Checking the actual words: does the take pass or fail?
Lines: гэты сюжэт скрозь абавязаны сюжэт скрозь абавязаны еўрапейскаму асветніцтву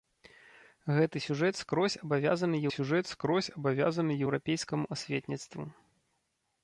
pass